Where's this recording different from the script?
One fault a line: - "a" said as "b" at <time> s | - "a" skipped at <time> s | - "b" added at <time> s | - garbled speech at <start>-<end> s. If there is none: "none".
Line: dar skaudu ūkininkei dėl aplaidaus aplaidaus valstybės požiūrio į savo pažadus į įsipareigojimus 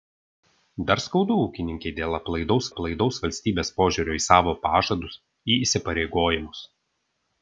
none